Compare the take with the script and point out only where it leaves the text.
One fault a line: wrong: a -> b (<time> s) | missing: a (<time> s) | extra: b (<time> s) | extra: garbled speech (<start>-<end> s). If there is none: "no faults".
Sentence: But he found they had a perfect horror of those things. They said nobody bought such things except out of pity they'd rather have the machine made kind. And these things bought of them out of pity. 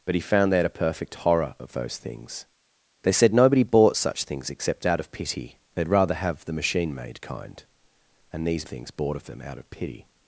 no faults